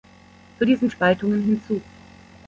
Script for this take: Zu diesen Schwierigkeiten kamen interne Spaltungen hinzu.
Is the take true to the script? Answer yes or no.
no